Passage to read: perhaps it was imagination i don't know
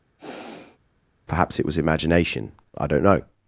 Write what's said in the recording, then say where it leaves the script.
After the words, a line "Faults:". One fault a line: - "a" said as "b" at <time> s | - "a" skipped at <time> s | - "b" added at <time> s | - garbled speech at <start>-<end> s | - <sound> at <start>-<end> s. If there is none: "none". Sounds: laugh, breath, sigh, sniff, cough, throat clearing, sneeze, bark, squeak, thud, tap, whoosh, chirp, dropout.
perhaps it was imagination i don't know
Faults:
- sigh at 0.2-0.8 s